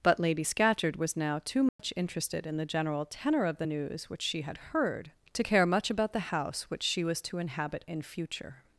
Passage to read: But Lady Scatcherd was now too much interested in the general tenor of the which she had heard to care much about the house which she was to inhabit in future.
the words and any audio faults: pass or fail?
fail